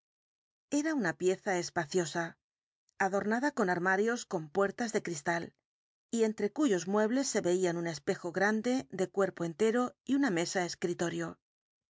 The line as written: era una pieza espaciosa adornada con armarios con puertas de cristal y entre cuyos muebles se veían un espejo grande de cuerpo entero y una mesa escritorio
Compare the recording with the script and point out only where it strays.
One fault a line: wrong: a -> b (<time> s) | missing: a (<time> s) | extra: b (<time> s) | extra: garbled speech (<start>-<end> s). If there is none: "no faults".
no faults